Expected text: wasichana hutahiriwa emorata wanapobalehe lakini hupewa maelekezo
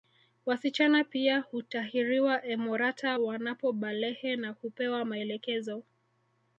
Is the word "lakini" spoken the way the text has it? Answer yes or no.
no